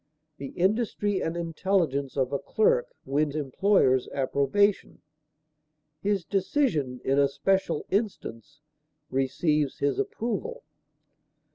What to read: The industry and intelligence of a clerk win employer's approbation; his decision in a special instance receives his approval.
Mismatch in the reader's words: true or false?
false